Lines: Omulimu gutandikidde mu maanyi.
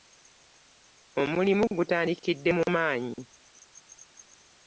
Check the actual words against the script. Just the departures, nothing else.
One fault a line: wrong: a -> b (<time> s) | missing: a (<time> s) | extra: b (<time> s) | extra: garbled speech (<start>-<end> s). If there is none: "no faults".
no faults